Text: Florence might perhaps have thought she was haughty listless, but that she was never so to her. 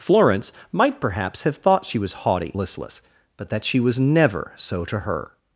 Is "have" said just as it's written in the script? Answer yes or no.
yes